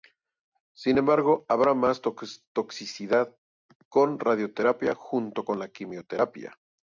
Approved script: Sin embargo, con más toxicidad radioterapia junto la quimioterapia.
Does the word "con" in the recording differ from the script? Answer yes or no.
yes